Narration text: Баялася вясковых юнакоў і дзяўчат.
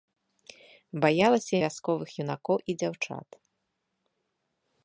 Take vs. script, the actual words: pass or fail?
pass